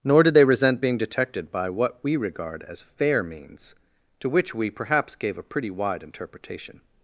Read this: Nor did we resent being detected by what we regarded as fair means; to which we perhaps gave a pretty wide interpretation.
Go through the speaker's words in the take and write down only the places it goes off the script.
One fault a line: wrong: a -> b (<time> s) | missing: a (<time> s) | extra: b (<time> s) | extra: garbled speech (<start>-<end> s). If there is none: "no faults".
wrong: we -> they (0.3 s)
wrong: regarded -> regard (2.2 s)